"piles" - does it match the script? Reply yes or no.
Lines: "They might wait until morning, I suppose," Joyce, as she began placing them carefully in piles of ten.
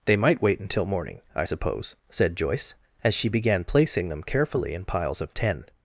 yes